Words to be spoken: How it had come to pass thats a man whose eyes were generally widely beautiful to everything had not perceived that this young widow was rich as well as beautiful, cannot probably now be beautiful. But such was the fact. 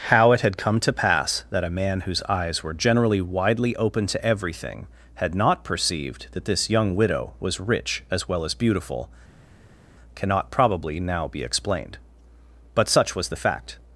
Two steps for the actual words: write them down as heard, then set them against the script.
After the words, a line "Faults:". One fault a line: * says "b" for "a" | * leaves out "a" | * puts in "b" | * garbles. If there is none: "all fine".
How it had come to pass that a man whose eyes were generally widely open to everything had not perceived that this young widow was rich as well as beautiful, cannot probably now be explained. But such was the fact.
Faults:
* says "that" for "thats"
* says "open" for "beautiful"
* says "explained" for "beautiful"